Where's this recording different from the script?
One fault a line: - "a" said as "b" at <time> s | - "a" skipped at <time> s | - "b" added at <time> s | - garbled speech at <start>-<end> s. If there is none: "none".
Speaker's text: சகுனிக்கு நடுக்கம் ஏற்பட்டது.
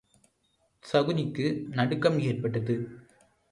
none